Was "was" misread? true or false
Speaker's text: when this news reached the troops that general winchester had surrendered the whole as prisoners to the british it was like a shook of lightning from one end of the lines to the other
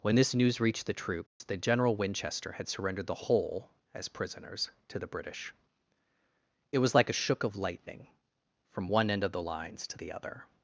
false